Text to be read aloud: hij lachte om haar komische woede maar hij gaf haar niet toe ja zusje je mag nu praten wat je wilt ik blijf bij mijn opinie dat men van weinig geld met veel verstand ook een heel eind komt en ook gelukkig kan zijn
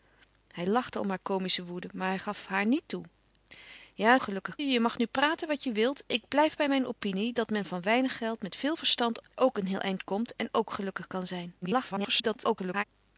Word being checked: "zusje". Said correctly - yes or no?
no